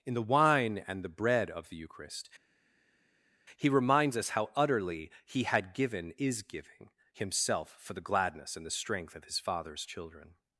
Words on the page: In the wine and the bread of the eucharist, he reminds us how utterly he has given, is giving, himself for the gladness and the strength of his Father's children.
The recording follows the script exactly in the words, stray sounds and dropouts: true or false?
false